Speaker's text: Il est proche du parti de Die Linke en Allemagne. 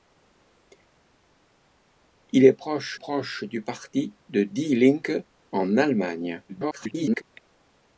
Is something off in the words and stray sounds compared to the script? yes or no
yes